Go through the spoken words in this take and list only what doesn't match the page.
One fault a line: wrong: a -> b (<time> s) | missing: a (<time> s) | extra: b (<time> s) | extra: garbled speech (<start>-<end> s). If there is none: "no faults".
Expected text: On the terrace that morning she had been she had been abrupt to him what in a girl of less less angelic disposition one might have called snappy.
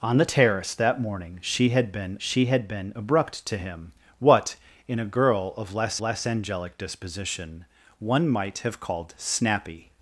no faults